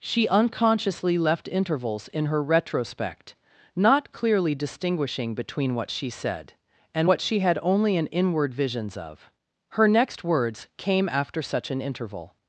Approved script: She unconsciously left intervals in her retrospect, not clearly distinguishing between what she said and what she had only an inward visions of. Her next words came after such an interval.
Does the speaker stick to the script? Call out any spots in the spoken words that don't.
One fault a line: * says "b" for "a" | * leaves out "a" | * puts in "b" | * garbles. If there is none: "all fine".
all fine